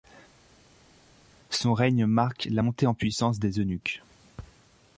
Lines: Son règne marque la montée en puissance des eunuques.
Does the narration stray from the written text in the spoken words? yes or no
no